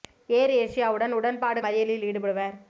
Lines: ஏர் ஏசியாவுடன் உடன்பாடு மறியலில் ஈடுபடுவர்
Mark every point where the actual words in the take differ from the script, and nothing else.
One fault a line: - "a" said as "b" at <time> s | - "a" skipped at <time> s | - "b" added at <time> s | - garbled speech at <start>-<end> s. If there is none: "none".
none